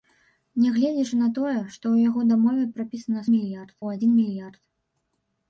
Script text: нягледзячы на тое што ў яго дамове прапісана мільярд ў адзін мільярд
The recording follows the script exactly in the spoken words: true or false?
true